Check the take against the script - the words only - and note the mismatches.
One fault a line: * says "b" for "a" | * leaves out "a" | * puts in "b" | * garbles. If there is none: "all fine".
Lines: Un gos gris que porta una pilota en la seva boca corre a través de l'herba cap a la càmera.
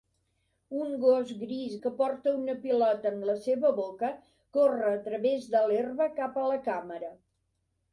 all fine